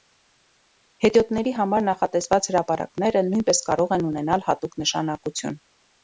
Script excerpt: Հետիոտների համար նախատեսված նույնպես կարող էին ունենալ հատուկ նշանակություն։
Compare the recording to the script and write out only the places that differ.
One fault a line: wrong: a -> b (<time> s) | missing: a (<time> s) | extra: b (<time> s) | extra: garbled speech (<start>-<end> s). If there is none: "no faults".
extra: հրապարակները (2.5 s)
wrong: էին -> են (4.0 s)